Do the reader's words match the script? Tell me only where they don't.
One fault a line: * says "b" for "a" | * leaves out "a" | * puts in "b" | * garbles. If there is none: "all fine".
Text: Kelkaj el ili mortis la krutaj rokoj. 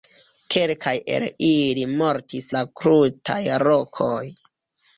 all fine